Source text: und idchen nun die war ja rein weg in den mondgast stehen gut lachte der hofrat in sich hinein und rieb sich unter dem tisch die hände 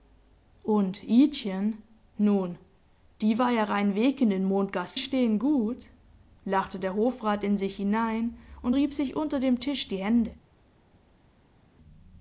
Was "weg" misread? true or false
false